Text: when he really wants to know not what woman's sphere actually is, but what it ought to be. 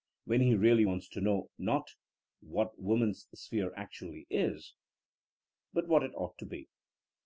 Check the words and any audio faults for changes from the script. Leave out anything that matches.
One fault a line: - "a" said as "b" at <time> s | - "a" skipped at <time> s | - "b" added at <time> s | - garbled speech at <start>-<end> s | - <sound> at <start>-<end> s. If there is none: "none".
none